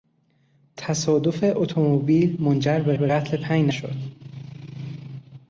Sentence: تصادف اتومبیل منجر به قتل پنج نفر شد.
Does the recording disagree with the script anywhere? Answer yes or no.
yes